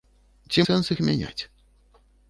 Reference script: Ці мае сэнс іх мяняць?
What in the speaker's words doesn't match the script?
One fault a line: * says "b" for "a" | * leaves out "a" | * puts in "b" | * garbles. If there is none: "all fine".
* leaves out "мае"